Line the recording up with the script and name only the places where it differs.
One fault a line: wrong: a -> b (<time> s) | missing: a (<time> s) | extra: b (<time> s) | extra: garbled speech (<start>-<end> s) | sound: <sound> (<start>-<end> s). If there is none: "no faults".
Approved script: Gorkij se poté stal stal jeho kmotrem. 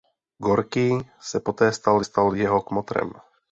no faults